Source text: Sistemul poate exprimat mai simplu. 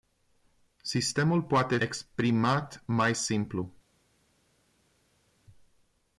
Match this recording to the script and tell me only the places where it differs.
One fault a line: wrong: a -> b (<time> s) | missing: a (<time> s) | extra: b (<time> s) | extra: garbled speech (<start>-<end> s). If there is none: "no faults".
no faults